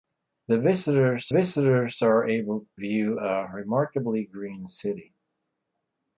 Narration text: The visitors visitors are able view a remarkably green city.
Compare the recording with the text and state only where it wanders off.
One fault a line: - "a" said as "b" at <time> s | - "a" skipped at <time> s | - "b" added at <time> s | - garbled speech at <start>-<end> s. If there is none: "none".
none